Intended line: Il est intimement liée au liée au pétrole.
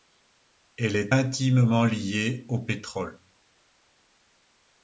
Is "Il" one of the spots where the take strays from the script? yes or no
yes